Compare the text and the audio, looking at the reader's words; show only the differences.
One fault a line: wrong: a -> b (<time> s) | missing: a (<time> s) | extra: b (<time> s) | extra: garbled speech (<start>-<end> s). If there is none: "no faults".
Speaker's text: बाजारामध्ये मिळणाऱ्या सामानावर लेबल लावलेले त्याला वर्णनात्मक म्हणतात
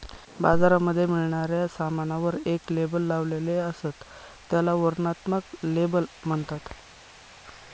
extra: एक (2.5 s)
extra: असत (3.6 s)
extra: लेबल (5.7 s)